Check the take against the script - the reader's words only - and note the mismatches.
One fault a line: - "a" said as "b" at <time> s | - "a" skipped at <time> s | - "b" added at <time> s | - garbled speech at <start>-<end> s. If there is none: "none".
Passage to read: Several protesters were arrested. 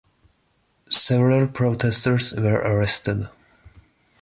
none